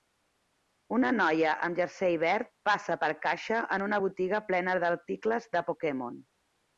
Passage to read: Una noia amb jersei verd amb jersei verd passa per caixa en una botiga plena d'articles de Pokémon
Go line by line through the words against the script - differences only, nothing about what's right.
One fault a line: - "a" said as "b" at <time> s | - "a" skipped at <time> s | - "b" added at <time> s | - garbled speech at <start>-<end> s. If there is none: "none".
- "amb jersei verd" skipped at 2.5 s